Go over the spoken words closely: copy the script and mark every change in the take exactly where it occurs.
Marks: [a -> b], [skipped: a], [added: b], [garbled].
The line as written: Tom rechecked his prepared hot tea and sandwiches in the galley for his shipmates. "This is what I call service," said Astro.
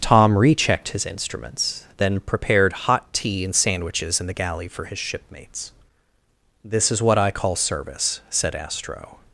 Tom rechecked his [added: instruments then] prepared hot tea and sandwiches in the galley for his shipmates. "This is what I call service," said Astro.